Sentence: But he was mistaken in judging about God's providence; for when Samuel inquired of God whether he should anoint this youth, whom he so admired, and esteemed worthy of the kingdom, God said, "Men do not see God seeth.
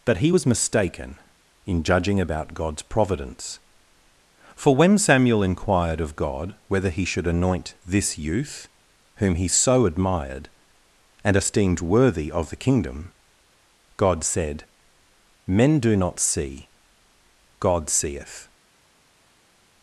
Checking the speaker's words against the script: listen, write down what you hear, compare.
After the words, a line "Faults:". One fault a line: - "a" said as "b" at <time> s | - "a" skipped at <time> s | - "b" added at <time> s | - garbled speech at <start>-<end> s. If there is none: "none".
But he was mistaken in judging about God's providence; for when Samuel inquired of God whether he should anoint this youth, whom he so admired, and esteemed worthy of the kingdom, God said, "Men do not see God seeth.
Faults:
none